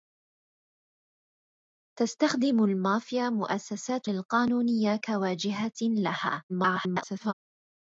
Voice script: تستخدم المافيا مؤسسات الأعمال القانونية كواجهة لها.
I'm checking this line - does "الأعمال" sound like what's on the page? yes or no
no